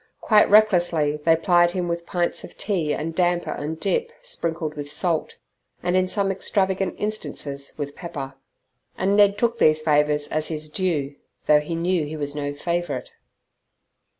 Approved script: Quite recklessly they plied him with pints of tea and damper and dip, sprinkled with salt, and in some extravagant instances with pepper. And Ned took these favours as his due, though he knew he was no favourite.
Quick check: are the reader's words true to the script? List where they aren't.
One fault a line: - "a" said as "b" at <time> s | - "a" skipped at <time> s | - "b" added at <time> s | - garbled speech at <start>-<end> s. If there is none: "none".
none